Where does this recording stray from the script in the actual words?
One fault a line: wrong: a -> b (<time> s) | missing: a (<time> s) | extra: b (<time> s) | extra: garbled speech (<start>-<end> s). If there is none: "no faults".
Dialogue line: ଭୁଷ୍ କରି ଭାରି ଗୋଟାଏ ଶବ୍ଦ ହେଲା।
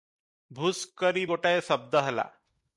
missing: ଭାରି (1.2 s)